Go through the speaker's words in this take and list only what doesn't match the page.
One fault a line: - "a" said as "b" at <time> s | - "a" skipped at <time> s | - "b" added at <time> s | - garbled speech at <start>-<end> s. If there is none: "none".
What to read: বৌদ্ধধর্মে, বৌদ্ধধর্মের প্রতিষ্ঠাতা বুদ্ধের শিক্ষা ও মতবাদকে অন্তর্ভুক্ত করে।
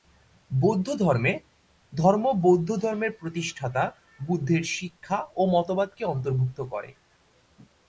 - "ধর্ম" added at 1.9 s